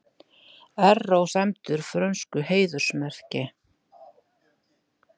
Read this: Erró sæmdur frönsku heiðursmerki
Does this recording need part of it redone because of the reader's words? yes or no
no